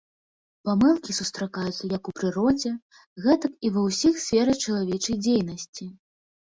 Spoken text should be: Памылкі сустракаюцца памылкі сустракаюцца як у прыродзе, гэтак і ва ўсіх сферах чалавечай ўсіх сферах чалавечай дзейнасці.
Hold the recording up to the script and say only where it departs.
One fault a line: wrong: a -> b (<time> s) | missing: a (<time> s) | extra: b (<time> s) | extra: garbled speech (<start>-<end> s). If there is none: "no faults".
missing: памылкі сустракаюцца (1.9 s)
missing: ўсіх сферах чалавечай (5.2 s)